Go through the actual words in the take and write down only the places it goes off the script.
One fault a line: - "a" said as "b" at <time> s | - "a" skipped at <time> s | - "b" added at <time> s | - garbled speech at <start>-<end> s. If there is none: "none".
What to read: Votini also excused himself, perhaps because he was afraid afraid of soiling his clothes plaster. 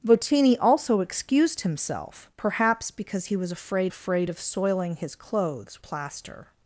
none